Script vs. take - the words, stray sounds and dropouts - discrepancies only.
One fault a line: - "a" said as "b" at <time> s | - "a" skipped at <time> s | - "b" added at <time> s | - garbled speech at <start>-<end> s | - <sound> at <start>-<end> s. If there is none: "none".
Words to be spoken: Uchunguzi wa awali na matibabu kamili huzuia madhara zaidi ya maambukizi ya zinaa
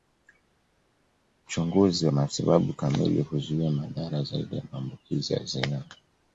- "wa awali na" skipped at 2.1 s